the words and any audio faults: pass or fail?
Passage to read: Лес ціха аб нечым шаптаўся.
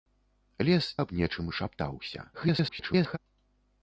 fail